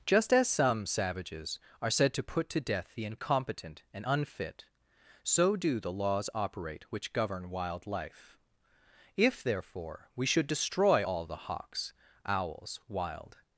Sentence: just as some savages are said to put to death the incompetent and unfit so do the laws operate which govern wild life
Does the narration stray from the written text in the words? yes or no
yes